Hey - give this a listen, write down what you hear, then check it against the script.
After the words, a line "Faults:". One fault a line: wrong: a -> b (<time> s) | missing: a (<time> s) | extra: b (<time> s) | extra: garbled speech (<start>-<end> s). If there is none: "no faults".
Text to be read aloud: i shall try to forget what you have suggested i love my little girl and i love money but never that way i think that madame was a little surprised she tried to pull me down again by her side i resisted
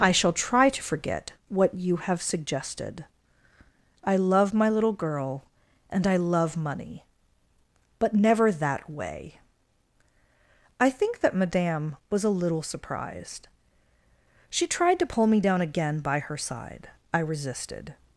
i shall try to forget what you have suggested i love my little girl and i love money but never that way i think that madame was a little surprised she tried to pull me down again by her side i resisted
Faults:
no faults